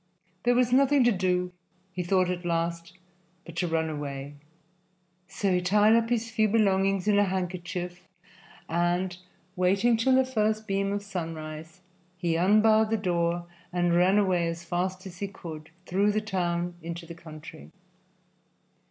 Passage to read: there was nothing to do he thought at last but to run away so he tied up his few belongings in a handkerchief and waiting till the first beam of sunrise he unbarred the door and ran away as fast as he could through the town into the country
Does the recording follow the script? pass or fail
pass